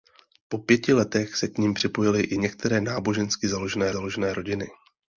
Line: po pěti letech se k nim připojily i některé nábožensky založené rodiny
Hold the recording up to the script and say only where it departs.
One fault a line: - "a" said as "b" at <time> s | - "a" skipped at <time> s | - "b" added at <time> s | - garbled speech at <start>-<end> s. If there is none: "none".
- "založené" added at 3.9 s